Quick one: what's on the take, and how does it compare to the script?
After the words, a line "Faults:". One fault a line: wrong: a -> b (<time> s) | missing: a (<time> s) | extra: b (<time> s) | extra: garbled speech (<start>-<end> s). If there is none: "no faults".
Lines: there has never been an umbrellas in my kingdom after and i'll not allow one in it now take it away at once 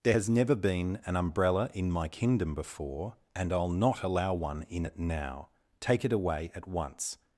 there has never been an umbrella in my kingdom before and i'll not allow one in it now take it away at once
Faults:
wrong: umbrellas -> umbrella (1.2 s)
wrong: after -> before (2.5 s)